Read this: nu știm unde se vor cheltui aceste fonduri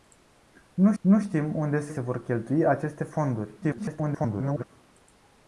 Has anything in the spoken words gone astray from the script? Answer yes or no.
yes